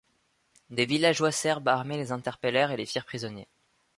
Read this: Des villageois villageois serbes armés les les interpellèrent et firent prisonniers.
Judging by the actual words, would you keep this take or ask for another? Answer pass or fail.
fail